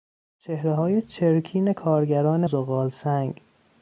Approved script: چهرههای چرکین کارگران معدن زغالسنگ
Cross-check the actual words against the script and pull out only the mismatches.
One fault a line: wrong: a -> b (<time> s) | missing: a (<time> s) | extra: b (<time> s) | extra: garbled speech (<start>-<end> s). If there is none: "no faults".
missing: معدن (2.5 s)